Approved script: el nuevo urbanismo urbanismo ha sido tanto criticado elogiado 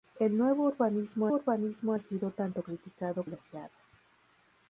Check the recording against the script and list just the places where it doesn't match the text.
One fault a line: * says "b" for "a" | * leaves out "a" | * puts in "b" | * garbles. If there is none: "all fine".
all fine